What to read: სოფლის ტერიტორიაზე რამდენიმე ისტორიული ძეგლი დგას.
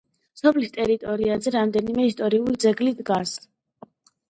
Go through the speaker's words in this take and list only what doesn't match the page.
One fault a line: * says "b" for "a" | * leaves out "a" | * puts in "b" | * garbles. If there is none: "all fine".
all fine